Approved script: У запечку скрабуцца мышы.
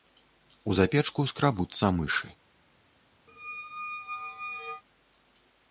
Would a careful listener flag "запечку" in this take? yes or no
no